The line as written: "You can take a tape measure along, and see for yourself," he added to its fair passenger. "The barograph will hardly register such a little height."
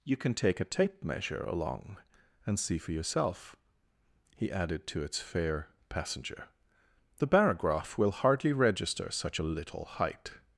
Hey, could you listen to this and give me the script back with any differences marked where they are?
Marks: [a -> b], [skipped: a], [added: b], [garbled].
"You can take a tape measure along, and see for yourself," he added to its fair passenger. "The barograph will hardly register such a little height."